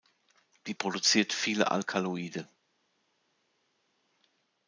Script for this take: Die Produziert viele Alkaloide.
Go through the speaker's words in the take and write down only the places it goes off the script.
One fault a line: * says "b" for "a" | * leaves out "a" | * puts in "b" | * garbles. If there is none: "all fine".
all fine